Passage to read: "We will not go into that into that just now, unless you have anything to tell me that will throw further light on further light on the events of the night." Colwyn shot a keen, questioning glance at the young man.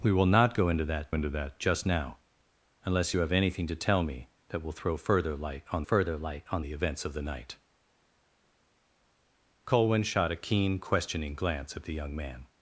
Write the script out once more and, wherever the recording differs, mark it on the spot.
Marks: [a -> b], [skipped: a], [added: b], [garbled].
"We will not go into that into that just now, unless you have anything to tell me that will throw further light on further light on the events of the night." Colwyn shot a keen, questioning glance at the young man.